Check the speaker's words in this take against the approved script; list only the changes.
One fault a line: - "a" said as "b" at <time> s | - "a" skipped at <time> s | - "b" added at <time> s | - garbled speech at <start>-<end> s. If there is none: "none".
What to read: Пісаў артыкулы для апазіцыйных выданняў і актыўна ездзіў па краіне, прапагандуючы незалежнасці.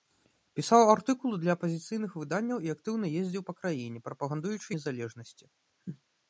none